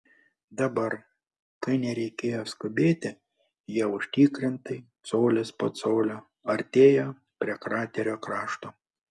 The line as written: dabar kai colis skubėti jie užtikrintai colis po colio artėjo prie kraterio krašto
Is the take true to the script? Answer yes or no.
no